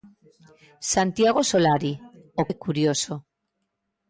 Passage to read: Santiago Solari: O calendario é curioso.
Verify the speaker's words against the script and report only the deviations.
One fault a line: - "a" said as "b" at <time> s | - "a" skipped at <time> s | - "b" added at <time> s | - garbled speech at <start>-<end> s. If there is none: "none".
- "calendario" skipped at 2.4 s